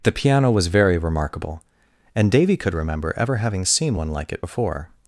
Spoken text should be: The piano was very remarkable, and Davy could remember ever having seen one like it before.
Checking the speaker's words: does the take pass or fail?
pass